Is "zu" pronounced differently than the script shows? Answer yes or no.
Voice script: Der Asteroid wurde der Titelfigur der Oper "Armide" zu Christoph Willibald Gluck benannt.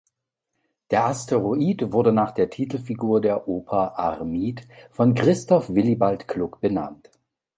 yes